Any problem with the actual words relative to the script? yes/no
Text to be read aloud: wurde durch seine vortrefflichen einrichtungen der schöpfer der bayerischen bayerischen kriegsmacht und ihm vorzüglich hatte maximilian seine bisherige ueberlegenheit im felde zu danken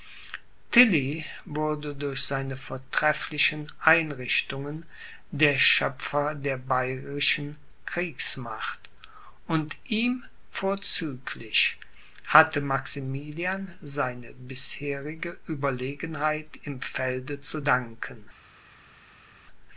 yes